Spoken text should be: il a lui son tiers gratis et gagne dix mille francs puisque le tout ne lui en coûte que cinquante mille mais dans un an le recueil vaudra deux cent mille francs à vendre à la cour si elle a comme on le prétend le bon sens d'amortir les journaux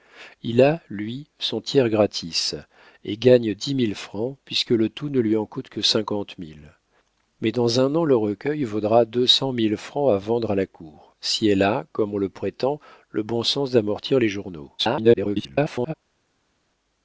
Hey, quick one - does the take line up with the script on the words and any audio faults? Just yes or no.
no